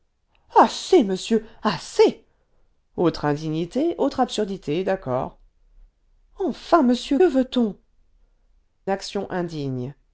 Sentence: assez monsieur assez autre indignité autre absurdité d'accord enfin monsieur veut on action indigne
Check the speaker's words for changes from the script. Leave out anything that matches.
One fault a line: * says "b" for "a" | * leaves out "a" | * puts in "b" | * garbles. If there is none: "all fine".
all fine